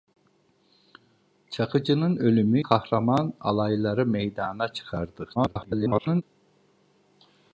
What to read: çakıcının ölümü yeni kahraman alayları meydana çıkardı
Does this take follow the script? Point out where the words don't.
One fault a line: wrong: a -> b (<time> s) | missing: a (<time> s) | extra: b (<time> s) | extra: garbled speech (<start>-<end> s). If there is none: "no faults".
missing: yeni (2.6 s)
extra: garbled speech (5.4-6.2 s)